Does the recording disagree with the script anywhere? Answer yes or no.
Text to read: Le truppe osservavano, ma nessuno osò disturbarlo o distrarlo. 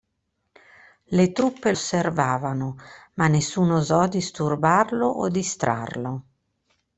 no